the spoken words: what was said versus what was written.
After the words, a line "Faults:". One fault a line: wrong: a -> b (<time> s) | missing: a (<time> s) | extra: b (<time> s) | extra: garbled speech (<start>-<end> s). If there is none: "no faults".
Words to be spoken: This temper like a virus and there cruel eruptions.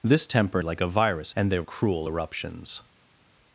This temper like a virus and there cruel eruptions.
Faults:
no faults